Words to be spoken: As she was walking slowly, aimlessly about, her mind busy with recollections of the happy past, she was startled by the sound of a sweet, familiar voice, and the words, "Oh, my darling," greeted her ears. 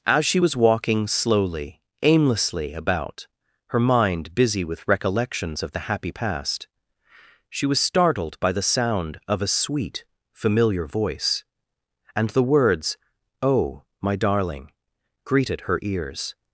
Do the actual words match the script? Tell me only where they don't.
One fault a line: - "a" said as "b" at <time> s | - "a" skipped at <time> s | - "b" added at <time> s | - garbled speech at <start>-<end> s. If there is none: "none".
none